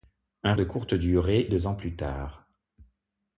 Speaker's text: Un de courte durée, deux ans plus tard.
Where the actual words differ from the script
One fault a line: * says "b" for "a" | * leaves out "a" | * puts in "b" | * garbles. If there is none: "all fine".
all fine